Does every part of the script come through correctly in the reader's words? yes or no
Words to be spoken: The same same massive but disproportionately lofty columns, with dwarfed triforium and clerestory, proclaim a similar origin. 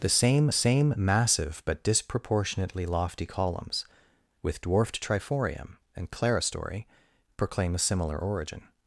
yes